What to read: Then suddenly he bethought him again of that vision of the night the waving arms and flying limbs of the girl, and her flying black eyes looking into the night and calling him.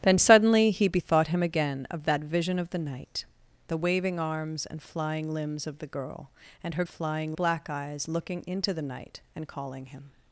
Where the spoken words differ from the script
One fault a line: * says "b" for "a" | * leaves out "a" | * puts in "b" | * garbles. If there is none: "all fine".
all fine